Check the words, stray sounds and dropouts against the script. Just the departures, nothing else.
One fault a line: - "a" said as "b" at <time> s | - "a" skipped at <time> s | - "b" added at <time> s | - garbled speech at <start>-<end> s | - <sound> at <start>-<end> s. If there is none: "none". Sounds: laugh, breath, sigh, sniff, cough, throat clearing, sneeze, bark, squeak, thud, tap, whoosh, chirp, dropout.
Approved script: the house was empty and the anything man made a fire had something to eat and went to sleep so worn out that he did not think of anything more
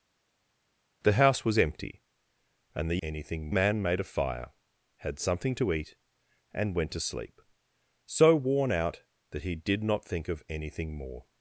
none